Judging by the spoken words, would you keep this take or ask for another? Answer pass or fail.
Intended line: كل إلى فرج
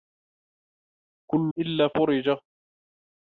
pass